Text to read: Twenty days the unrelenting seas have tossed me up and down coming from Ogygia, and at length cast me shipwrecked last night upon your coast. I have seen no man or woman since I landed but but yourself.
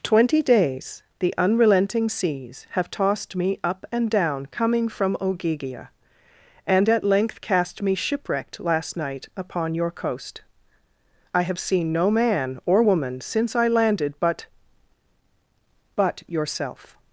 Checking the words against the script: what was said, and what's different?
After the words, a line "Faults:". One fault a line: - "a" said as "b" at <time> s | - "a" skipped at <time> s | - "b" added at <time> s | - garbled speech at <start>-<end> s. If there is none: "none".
Twenty days the unrelenting seas have tossed me up and down coming from Ogygia, and at length cast me shipwrecked last night upon your coast. I have seen no man or woman since I landed but but yourself.
Faults:
none